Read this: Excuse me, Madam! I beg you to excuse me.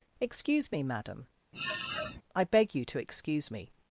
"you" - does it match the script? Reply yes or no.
yes